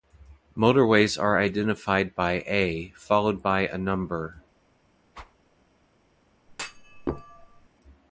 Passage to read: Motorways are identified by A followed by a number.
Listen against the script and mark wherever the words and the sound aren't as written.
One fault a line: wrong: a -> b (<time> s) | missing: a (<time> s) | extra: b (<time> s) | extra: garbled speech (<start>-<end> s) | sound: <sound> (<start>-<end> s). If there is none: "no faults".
sound: whoosh (5.1-5.4 s)
sound: thud (6.5-7.7 s)